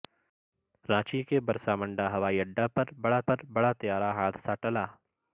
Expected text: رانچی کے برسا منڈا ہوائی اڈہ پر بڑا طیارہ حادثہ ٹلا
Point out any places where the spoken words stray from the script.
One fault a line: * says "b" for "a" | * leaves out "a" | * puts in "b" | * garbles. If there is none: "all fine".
* puts in "پر بڑا"